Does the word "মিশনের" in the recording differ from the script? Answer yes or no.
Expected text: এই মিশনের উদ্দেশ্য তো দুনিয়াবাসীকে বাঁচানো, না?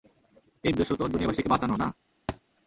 yes